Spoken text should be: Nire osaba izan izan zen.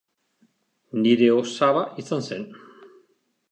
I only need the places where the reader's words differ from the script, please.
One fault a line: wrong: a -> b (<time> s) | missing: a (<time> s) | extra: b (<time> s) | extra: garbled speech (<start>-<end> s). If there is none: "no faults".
missing: izan (2.3 s)